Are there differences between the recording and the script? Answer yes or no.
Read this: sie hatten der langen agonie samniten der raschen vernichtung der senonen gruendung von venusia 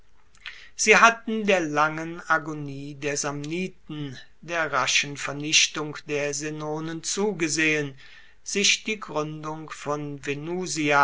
yes